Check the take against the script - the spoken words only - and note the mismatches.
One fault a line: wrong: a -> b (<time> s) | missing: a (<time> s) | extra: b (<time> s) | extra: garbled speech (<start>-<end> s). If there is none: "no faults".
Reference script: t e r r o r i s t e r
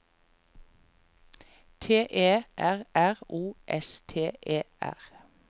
missing: r i (3.6 s)